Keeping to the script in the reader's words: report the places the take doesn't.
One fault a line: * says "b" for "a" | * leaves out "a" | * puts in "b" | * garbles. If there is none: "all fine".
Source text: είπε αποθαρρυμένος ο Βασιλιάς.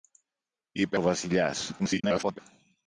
* leaves out "αποθαρρυμένος"
* garbles